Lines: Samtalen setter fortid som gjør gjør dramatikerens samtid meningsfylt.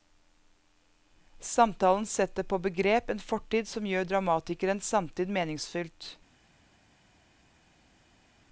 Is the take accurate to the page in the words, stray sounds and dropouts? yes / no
no